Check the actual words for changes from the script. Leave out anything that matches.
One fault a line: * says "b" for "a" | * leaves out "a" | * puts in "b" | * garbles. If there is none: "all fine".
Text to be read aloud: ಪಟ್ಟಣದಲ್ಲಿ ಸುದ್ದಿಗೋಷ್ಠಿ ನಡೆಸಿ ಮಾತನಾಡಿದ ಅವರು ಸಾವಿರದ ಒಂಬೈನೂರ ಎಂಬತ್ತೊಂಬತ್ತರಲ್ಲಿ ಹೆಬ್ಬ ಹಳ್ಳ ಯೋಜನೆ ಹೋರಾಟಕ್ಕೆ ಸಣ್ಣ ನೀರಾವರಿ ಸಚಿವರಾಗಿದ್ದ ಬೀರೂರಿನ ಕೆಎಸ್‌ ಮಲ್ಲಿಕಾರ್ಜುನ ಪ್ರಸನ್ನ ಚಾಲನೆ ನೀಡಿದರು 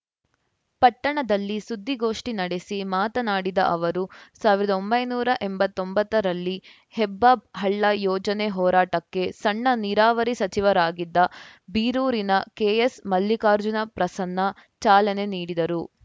all fine